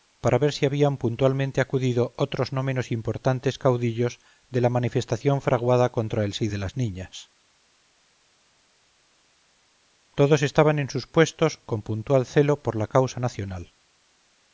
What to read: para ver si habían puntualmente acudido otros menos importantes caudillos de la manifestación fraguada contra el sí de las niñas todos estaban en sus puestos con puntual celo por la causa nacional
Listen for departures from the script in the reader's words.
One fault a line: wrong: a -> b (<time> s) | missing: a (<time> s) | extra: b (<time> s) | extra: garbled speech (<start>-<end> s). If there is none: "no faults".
extra: no (2.5 s)